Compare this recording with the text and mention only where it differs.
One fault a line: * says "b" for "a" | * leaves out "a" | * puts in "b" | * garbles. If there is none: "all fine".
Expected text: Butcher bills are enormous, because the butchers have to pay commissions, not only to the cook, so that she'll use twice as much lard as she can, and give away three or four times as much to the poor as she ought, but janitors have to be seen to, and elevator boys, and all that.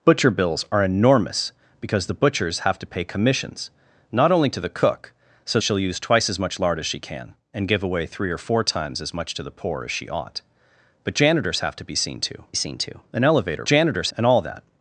* leaves out "that"
* puts in "seen to"
* says "janitors" for "boys"